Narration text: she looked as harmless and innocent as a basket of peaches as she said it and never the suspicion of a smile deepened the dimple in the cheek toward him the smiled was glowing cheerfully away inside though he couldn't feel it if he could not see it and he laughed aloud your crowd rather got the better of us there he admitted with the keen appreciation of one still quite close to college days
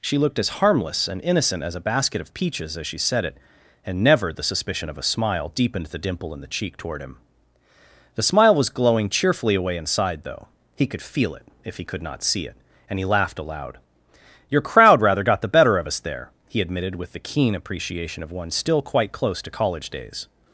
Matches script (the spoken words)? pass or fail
fail